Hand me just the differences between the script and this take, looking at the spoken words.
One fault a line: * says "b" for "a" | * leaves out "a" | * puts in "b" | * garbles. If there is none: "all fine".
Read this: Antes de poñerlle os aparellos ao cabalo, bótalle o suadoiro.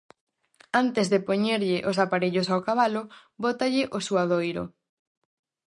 all fine